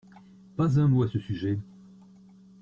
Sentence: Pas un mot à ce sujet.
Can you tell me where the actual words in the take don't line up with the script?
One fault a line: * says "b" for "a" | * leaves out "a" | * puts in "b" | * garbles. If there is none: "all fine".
all fine